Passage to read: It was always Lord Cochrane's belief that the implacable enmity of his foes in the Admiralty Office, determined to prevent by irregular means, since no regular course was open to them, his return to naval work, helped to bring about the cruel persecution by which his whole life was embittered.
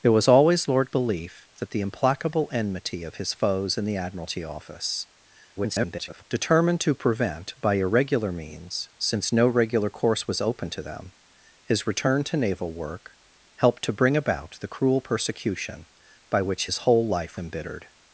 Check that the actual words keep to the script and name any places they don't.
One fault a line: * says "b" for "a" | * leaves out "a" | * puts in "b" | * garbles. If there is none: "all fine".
* leaves out "Cochrane's"
* garbles
* leaves out "was"